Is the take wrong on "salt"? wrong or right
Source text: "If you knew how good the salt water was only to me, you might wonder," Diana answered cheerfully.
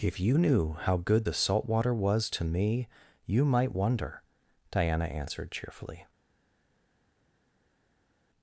right